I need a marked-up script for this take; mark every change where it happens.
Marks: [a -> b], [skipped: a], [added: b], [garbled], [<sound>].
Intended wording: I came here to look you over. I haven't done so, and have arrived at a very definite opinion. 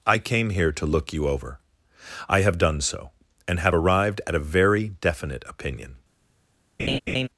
I came here to look you over. I [haven't -> have] done so, and have arrived at a very definite opinion. [laugh]